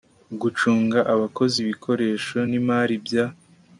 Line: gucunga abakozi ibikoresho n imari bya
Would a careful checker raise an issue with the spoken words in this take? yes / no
no